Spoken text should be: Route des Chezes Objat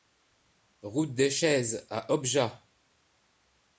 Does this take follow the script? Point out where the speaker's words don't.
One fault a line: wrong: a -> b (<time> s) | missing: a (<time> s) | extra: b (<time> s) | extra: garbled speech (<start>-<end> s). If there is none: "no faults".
extra: à (1.9 s)